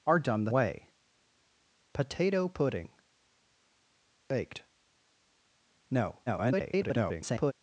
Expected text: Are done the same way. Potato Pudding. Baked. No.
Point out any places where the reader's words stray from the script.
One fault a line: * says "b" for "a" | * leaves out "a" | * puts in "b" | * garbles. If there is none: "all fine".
* leaves out "same"
* garbles